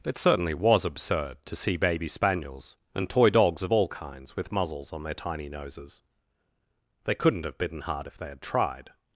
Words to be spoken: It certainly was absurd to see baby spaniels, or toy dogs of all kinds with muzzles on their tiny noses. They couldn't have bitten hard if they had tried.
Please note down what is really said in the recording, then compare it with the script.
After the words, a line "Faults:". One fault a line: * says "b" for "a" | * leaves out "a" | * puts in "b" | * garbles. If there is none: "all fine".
It certainly was absurd to see baby spaniels, and toy dogs of all kinds with muzzles on their tiny noses. They couldn't have bitten hard if they had tried.
Faults:
* says "and" for "or"